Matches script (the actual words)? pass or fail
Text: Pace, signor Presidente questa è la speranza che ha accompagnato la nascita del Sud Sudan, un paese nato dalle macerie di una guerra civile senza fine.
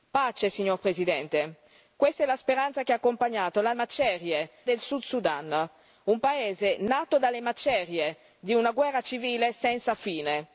fail